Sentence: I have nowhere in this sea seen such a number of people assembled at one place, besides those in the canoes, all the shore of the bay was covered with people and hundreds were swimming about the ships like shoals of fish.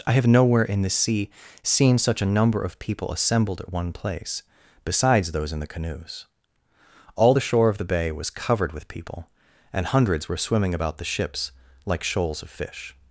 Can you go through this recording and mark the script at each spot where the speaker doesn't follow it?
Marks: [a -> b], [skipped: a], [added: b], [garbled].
I have nowhere in [this -> the] sea seen such a number of people assembled at one place, besides those in the canoes, all the shore of the bay was covered with people and hundreds were swimming about the ships like shoals of fish.